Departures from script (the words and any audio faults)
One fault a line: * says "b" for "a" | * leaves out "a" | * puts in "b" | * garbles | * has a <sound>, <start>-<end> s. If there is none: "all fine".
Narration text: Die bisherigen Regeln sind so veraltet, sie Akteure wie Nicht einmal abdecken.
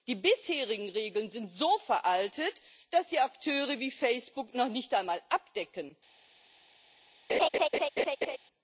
* puts in "dass"
* puts in "Facebook noch"
* has a laugh, 7.3-8.4 s